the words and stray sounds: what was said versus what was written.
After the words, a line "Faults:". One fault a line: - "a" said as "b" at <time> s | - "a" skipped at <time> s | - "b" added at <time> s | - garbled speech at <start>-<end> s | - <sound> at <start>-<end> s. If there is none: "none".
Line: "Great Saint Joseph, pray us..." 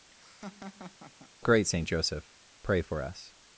"Great Saint Joseph, pray for us..."
Faults:
- laugh at 0.1-1.3 s
- "for" added at 2.8 s